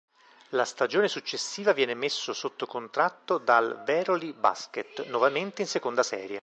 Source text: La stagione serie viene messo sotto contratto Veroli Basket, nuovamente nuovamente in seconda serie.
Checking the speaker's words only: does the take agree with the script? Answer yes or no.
no